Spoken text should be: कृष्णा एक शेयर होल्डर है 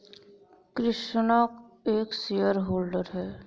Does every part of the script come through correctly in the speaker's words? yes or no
yes